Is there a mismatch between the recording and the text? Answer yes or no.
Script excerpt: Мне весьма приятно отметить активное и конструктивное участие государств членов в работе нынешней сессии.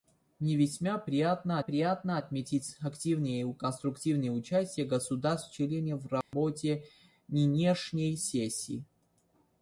yes